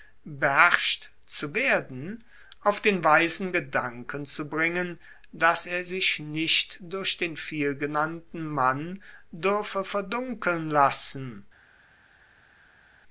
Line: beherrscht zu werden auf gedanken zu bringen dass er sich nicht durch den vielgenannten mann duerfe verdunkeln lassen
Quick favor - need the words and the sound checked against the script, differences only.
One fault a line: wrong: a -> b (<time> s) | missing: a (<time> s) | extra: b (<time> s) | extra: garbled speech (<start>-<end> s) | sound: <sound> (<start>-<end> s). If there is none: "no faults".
extra: den weisen (2.8 s)